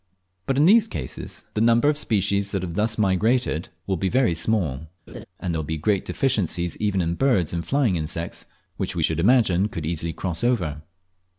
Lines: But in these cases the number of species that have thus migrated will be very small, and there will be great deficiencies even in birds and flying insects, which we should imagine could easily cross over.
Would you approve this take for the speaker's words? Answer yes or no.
yes